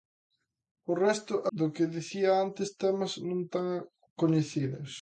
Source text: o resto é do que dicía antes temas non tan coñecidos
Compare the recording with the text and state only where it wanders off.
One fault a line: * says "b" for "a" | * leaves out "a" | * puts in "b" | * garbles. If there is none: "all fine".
all fine